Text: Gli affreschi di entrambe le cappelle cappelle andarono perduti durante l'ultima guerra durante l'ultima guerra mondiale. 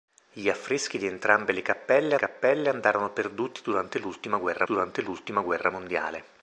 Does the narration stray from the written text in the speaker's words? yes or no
no